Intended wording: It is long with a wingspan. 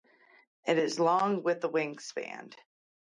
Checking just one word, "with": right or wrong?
right